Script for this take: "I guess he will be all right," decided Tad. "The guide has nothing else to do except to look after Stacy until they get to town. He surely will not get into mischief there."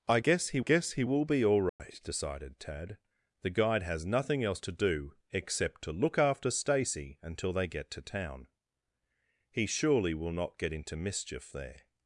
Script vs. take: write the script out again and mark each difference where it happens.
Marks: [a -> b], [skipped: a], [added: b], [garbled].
"I guess he [added: guess he] will be all right," decided Tad. "The guide has nothing else to do except to look after Stacy until they get to town. He surely will not get into mischief there."